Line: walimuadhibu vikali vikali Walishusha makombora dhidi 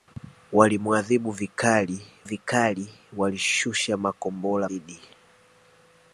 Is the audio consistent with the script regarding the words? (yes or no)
yes